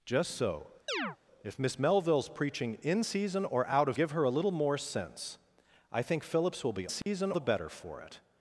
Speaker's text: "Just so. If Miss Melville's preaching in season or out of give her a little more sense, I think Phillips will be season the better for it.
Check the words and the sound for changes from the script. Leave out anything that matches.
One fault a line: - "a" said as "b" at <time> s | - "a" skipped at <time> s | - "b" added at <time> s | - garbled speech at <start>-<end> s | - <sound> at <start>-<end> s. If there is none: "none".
- chirp at 0.9-1.2 s
- dropout at 7.0-7.1 s